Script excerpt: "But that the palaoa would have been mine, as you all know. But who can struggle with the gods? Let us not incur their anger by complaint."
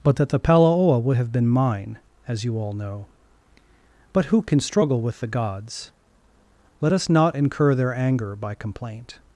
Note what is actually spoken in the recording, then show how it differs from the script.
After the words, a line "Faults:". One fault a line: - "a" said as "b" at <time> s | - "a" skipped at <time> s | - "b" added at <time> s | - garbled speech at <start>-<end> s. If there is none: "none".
"But that the palaoa would have been mine, as you all know. But who can struggle with the gods? Let us not incur their anger by complaint."
Faults:
none